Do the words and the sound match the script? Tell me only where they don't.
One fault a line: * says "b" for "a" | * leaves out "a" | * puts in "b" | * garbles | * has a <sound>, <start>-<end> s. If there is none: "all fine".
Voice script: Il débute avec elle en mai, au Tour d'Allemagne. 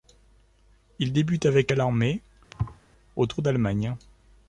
* has a thud, 2.5-2.8 s